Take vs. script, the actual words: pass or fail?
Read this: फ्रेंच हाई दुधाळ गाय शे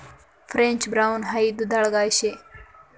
fail